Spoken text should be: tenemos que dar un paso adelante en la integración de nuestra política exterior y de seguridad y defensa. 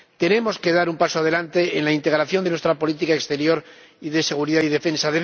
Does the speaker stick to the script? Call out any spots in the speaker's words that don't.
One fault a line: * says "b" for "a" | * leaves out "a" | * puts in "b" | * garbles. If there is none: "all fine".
all fine